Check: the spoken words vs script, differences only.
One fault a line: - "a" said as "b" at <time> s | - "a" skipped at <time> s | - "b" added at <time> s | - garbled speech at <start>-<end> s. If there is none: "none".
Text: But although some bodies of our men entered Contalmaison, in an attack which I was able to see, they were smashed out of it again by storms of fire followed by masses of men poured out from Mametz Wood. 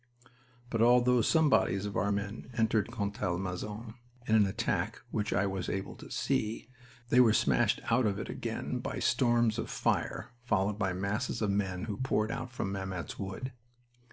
- "who" added at 11.8 s